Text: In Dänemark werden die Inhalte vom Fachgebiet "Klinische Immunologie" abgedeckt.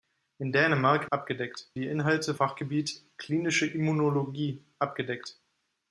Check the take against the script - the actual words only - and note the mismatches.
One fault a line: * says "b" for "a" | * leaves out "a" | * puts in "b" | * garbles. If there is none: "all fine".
* says "abgedeckt" for "werden"
* leaves out "vom"